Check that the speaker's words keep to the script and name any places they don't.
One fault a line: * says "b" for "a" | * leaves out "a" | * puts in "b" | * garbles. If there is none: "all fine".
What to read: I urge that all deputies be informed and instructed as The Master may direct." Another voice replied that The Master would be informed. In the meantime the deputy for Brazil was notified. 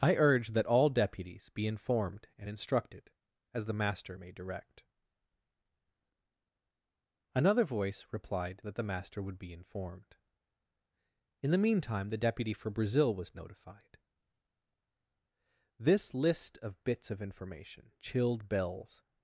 * puts in "This list of bits of information chilled Bell's"